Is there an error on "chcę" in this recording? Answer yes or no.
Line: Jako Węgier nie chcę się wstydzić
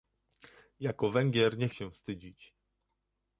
yes